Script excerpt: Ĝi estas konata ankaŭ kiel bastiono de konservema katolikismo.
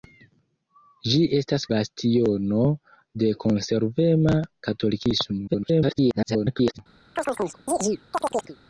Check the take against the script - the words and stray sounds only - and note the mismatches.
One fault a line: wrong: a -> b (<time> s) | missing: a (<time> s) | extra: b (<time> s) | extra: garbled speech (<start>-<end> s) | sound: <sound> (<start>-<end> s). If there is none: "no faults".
missing: konata ankaŭ kiel (1.6 s)
extra: garbled speech (5.5-6.8 s)
sound: chirp (7.2-8.6 s)